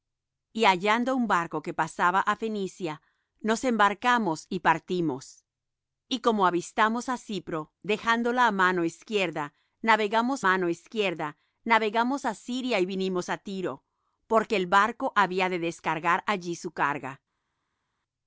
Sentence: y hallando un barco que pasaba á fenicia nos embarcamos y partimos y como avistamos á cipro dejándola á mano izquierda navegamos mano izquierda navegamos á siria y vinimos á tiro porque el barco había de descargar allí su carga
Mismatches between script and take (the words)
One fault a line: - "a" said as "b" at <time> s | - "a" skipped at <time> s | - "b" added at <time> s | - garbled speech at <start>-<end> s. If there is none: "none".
none